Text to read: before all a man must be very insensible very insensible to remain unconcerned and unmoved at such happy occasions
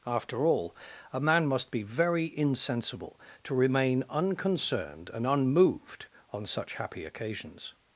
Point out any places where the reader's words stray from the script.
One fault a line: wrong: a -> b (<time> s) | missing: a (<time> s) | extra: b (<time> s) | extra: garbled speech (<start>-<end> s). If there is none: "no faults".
wrong: before -> after (0.1 s)
missing: very insensible (3.2 s)
wrong: at -> on (6.3 s)